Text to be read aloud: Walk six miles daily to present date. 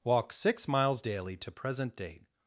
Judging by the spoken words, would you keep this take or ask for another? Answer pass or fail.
pass